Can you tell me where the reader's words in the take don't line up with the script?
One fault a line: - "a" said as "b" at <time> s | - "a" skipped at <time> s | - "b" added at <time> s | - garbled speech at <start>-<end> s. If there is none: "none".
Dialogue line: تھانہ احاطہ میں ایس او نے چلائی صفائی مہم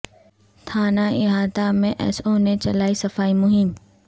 none